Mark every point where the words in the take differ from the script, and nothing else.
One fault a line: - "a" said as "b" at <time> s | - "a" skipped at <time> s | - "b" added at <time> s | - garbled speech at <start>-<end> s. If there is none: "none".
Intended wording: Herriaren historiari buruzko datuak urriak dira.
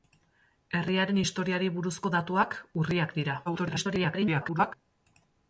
- garbled speech at 3.5-4.7 s